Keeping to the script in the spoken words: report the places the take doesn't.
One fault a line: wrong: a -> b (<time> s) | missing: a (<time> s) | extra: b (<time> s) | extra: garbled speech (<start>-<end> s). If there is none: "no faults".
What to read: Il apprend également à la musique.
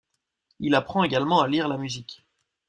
extra: lire (1.5 s)